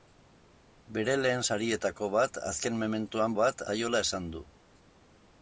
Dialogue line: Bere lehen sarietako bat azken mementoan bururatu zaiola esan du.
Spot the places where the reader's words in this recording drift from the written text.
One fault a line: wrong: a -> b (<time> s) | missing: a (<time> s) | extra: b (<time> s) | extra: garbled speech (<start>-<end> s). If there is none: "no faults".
wrong: bururatu -> bat (3.4 s)